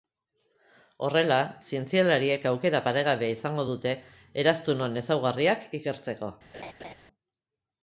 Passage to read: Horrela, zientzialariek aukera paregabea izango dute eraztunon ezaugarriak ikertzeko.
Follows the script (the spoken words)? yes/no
yes